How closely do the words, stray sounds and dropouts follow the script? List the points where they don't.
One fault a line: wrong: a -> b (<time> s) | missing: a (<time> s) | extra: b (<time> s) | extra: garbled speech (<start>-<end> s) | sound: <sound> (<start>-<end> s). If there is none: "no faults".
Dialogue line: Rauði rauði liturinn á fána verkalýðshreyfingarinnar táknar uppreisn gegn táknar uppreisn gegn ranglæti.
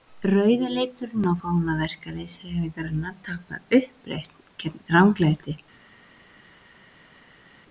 missing: rauði (0.7 s)
missing: táknar uppreisn gegn (4.8 s)